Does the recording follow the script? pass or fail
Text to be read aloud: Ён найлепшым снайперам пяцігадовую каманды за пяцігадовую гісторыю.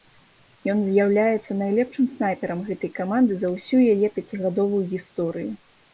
fail